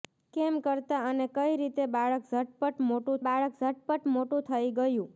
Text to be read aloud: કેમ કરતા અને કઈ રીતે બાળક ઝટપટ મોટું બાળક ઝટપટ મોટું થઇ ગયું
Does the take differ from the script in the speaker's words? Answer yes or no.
no